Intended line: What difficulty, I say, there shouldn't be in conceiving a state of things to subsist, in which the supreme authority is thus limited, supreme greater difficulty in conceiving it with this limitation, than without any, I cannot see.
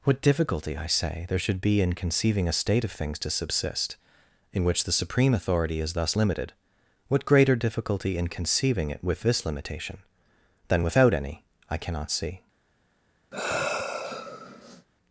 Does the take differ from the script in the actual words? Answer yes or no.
yes